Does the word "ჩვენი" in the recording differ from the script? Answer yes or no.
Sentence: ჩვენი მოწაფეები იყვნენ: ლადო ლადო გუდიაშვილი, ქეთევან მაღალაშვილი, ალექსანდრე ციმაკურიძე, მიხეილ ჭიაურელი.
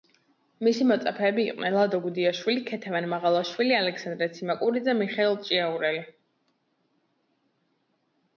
yes